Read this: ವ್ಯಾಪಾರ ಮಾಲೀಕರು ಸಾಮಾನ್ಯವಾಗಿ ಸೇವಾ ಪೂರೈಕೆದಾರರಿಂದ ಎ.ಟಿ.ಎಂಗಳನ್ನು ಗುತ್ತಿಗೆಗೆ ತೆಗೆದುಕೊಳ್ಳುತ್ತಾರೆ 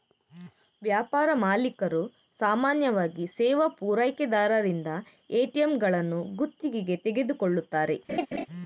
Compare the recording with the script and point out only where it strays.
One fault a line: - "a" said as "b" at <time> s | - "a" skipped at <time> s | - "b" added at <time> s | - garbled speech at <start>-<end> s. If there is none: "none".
none